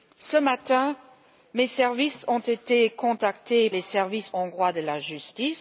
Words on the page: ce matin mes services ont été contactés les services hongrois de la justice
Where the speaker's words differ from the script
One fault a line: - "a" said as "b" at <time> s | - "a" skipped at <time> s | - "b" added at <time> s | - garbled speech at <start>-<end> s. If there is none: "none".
none